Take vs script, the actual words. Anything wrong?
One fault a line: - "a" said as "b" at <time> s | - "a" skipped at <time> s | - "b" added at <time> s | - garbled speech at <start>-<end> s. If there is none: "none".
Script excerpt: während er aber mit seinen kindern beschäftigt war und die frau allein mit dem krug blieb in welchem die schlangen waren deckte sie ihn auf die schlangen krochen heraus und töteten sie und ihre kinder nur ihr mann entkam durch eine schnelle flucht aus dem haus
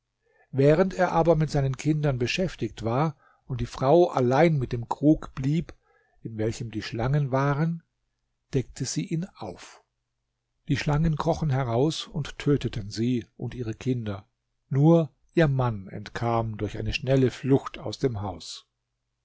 none